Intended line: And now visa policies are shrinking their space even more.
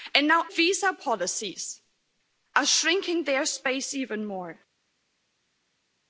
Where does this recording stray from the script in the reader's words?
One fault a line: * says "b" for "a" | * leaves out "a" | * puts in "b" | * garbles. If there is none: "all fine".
all fine